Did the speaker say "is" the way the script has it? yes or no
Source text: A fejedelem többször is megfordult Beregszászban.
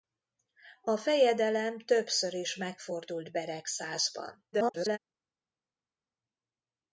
yes